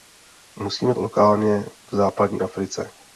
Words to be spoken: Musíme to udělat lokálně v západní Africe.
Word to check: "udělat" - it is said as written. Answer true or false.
false